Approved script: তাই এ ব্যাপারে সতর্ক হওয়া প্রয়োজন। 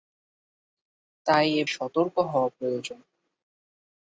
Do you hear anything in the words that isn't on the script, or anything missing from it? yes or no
yes